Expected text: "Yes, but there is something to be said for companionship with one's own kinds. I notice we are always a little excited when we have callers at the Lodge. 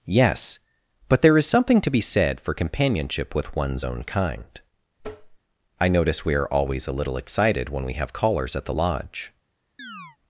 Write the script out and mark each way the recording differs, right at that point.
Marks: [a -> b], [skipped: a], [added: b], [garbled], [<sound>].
"Yes, but there is something to be said for companionship with one's own [kinds. -> kind] [tap] I notice we are always a little excited when we have callers at the Lodge. [chirp]